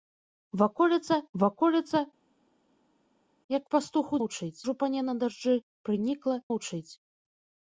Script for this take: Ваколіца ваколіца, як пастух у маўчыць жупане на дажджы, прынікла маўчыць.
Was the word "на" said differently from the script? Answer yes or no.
no